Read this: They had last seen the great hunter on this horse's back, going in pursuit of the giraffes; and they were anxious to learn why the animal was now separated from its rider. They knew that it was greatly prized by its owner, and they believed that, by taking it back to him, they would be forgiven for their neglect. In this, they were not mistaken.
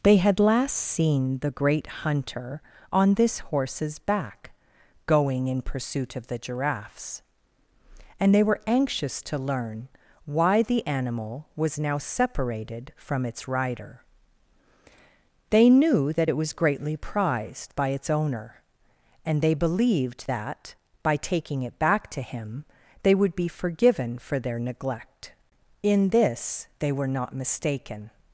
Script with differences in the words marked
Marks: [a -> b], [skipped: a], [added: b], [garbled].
They had last seen the great hunter on this horse's back, going in pursuit of the giraffes; and they were anxious to learn why the animal was now separated from its rider. They knew that it was greatly prized by its owner, and they believed that, by taking it back to him, they would be forgiven for their neglect. In this, they were not mistaken.